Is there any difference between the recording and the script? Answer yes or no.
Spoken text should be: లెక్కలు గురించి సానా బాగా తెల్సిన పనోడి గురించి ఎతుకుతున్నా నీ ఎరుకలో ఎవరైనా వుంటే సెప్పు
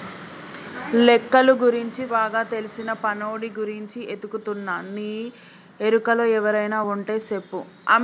yes